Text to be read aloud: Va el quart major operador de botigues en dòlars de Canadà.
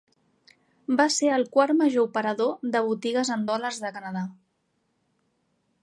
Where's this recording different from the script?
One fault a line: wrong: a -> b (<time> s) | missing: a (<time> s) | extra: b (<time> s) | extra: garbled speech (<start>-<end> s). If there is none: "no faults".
extra: ser (1.1 s)